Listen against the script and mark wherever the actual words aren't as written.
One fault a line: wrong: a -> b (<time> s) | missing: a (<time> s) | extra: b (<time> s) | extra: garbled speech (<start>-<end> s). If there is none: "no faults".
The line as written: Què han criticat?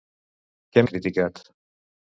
no faults